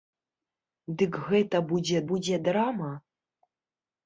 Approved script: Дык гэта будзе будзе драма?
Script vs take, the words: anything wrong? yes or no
no